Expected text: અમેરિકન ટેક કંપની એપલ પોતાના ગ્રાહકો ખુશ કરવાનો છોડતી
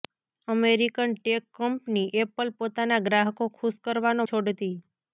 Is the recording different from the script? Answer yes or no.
no